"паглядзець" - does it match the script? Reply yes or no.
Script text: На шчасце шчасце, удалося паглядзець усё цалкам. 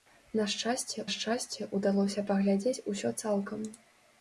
yes